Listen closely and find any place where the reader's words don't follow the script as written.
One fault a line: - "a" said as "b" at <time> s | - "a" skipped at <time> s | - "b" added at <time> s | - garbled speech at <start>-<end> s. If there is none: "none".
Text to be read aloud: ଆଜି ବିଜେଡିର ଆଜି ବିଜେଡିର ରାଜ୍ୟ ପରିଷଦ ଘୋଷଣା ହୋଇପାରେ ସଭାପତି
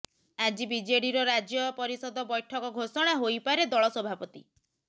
- "ଆଜି ବିଜେଡିର" skipped at 1.2 s
- "ବୈଠକ" added at 2.3 s
- "ଦଳ" added at 3.7 s